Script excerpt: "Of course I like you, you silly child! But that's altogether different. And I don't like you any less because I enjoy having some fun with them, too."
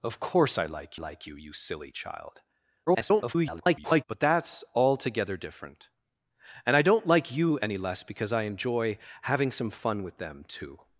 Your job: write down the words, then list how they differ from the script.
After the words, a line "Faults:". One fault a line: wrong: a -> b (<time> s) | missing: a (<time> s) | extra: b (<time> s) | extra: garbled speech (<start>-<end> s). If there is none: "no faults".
"Of course I like like you, you silly child! [garbled] But that's altogether different. And I don't like you any less because I enjoy having some fun with them, too."
Faults:
extra: like (0.9 s)
extra: garbled speech (2.9-4.0 s)